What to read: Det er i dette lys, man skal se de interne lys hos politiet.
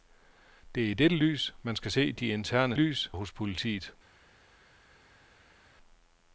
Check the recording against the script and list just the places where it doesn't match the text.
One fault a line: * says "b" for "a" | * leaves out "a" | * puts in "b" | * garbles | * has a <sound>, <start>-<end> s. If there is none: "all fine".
all fine